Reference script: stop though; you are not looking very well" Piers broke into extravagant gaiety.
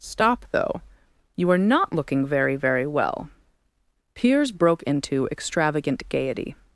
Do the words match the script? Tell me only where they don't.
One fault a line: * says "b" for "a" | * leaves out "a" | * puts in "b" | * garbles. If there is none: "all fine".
* puts in "very"